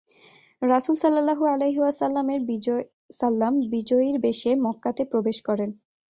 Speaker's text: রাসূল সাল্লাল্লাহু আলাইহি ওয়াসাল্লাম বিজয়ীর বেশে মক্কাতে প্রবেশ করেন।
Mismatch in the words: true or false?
false